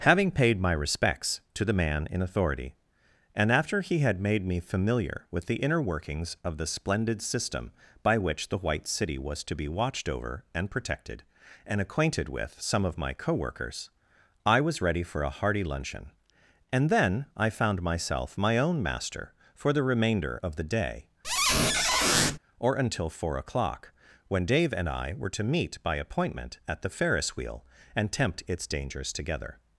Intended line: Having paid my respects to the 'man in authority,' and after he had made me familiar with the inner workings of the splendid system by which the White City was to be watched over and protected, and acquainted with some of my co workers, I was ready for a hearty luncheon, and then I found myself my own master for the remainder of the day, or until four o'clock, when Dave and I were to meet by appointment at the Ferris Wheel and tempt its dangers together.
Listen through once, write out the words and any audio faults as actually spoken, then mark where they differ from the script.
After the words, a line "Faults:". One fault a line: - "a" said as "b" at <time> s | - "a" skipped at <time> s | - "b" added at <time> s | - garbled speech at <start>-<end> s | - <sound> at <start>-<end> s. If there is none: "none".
Having paid my respects to the 'man in authority,' and after he had made me familiar with the inner workings of the splendid system by which the White City was to be watched over and protected, and acquainted with some of my co workers, I was ready for a hearty luncheon, and then I found myself my own master for the remainder of the day, or until four o'clock, when Dave and I were to meet by appointment at the Ferris Wheel and tempt its dangers together.
Faults:
- squeak at 21.2-22.4 s